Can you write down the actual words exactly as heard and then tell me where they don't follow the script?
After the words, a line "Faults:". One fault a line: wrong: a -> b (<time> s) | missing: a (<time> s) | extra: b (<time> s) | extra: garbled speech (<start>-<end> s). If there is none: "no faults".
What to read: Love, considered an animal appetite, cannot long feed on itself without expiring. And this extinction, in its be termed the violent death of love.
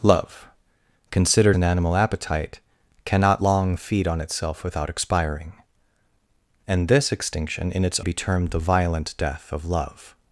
Love, considered an animal appetite, cannot long feed on itself without expiring. And this extinction, in its be termed the violent death of love.
Faults:
no faults